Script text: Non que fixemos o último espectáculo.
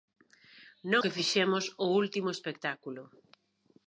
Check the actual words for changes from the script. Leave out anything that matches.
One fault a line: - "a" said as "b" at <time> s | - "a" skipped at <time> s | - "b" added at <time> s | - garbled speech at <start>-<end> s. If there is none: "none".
none